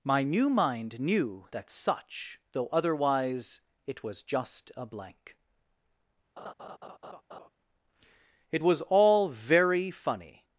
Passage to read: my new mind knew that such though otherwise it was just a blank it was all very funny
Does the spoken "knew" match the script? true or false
true